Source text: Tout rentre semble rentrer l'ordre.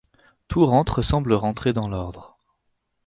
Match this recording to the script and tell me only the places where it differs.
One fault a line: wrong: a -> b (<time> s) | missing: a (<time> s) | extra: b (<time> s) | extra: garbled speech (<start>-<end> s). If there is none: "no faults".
extra: dans (1.7 s)